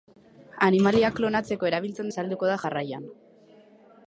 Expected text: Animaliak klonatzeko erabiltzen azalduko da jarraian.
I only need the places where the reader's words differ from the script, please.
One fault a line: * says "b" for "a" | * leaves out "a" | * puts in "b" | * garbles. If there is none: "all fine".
all fine